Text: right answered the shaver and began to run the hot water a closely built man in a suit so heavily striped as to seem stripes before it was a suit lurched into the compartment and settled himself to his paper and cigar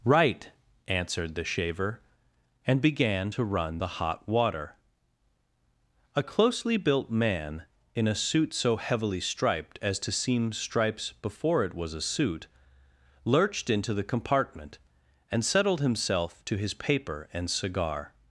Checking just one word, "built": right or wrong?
right